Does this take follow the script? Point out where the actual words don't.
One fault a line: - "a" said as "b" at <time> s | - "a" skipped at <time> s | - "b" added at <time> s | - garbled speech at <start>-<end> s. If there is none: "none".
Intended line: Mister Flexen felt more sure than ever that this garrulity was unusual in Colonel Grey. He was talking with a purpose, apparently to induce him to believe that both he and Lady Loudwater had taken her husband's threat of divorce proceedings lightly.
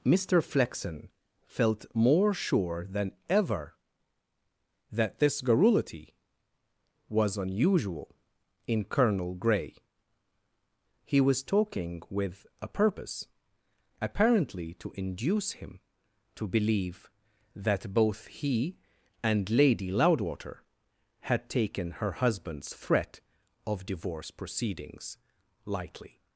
none